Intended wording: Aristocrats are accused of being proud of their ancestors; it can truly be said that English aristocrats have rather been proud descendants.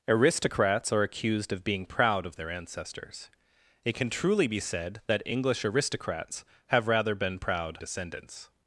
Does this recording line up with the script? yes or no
yes